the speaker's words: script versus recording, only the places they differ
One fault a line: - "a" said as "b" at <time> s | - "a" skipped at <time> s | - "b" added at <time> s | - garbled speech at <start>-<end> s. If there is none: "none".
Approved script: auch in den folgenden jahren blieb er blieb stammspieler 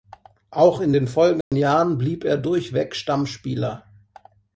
- "blieb" said as "durchweg" at 2.4 s